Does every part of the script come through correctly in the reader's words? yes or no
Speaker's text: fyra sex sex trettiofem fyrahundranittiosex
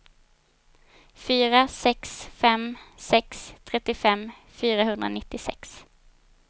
no